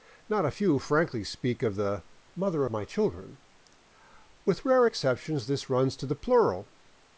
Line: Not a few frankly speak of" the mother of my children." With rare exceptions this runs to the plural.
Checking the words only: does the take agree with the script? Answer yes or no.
yes